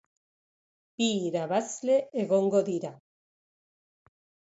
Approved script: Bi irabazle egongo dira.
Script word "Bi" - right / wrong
right